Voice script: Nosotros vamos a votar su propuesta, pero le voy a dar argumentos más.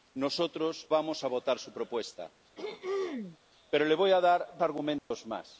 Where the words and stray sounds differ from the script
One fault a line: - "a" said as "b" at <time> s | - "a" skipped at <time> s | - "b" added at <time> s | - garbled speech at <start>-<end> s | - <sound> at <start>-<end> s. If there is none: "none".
- throat clearing at 2.6-3.4 s
- dropout at 5.0-5.1 s